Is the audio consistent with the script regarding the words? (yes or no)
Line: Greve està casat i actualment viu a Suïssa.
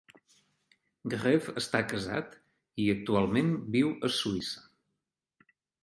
yes